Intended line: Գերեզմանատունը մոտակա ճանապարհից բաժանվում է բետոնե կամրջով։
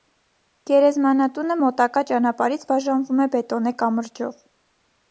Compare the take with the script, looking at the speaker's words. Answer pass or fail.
pass